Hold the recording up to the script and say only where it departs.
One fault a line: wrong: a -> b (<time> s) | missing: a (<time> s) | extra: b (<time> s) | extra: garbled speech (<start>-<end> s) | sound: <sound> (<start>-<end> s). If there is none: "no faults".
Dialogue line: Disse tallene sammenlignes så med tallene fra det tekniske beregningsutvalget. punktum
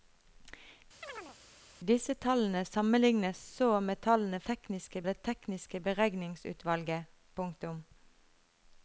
sound: chirp (1.0-1.4 s)
wrong: fra -> tekniske (4.5 s)